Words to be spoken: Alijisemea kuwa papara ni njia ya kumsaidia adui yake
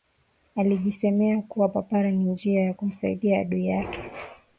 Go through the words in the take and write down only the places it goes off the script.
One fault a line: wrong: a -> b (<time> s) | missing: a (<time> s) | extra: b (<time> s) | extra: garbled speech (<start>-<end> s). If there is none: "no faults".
no faults